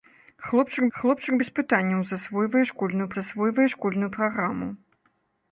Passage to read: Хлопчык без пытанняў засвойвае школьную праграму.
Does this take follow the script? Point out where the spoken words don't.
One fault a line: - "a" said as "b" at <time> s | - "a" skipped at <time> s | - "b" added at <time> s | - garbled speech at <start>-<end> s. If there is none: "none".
- "хлопчык" added at 1.0 s
- "засвойвае школьную" added at 3.1 s